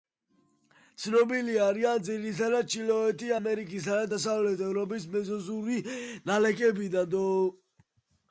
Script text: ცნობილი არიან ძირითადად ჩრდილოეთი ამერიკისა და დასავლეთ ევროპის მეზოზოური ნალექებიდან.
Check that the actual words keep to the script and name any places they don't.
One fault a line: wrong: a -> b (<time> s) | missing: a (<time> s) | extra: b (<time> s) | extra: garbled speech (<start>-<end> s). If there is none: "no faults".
no faults